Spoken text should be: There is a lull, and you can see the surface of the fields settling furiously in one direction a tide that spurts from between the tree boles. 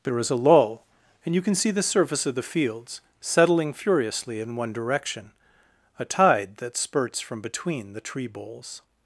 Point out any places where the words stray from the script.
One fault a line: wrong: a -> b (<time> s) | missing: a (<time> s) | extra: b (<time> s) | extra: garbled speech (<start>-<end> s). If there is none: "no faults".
no faults